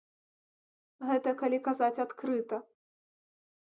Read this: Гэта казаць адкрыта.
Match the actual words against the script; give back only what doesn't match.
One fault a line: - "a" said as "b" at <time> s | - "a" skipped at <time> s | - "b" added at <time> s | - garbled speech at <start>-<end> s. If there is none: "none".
- "калі" added at 1.4 s